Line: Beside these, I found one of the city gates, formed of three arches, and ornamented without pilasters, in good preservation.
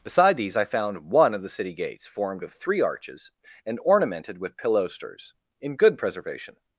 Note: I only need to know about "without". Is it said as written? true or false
false